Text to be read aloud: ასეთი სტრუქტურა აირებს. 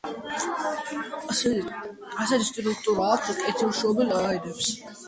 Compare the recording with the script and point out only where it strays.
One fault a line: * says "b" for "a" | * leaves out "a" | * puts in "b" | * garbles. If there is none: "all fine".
* puts in "აქვთ კეთილშობილ"